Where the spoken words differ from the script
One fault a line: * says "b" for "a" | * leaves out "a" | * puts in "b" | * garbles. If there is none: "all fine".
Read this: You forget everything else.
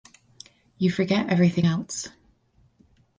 all fine